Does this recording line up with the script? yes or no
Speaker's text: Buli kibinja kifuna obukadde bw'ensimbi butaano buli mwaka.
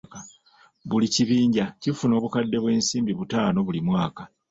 yes